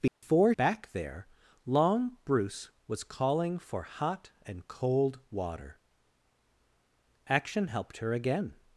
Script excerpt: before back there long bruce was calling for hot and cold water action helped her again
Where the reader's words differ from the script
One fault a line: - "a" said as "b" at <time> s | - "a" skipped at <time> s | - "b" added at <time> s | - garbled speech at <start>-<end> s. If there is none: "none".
none